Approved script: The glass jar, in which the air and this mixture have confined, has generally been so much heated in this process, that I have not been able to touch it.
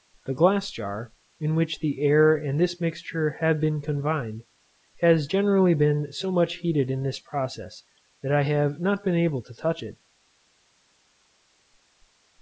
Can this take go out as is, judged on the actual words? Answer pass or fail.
fail